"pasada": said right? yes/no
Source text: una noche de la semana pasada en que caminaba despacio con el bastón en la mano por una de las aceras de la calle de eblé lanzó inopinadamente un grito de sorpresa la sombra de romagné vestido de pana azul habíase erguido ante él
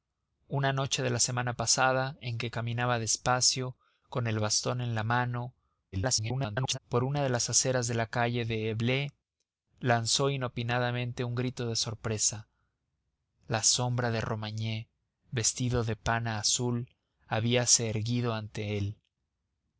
yes